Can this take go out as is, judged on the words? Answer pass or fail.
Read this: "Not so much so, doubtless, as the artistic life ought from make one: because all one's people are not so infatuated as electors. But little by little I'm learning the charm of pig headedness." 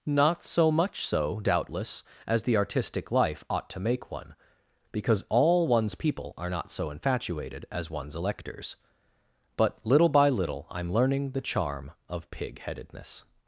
fail